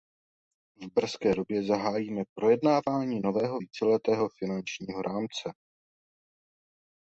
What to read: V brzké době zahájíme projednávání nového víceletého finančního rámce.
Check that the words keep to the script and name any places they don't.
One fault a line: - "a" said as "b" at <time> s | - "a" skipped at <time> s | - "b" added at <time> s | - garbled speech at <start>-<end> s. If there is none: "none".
none